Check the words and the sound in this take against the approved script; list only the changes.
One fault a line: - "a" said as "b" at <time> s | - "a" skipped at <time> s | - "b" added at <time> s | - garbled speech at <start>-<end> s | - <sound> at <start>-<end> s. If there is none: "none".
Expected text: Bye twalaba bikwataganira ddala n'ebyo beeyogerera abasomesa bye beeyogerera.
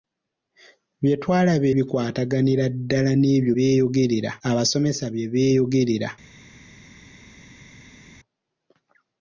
none